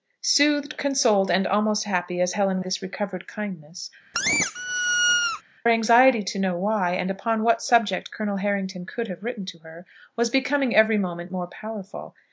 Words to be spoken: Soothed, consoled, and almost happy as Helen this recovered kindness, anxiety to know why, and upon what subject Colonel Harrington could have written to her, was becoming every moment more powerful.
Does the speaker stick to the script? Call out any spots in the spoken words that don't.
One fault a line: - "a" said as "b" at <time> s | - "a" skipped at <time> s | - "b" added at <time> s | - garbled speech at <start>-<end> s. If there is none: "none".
none